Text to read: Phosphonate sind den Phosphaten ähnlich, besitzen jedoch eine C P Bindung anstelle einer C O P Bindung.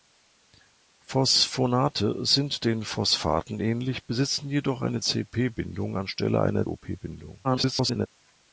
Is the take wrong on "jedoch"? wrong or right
right